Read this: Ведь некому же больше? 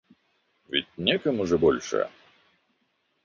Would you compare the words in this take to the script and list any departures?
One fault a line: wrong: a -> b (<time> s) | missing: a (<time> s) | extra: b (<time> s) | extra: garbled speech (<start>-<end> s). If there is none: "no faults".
no faults